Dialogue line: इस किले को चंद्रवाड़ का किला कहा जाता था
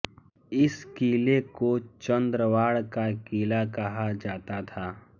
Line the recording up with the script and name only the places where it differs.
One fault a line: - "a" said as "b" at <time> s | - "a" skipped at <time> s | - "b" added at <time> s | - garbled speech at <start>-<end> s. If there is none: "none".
none